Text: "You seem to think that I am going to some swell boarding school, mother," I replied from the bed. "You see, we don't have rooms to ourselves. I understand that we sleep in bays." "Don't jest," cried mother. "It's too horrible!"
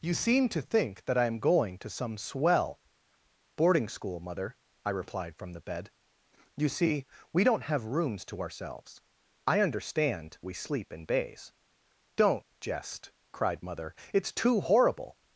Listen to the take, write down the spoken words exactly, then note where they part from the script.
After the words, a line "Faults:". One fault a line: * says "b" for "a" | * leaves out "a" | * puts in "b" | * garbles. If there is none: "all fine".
"You seem to think that I am going to some swell boarding school, mother," I replied from the bed. "You see, we don't have rooms to ourselves. I understand we sleep in bays." "Don't jest," cried mother. "It's too horrible!"
Faults:
* leaves out "that"